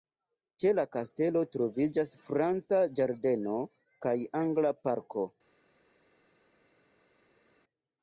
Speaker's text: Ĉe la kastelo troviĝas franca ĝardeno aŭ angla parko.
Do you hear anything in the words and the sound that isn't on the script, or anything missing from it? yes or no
yes